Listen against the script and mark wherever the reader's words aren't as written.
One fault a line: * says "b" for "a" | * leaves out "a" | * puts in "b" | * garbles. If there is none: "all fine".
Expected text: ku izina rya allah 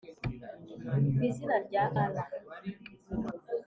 all fine